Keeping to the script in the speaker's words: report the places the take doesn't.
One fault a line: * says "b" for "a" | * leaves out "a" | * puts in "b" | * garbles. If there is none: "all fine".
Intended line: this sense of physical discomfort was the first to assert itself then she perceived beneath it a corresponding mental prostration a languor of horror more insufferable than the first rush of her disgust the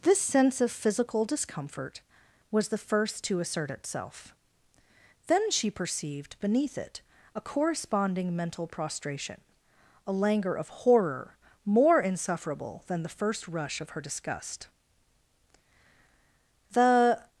all fine